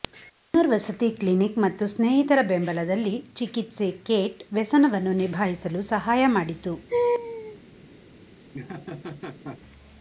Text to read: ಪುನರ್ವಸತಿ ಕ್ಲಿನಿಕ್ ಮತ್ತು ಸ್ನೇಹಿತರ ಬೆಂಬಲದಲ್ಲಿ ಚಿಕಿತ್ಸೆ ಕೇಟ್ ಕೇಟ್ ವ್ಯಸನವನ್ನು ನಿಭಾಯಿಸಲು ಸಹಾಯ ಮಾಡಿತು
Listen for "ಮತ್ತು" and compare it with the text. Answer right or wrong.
right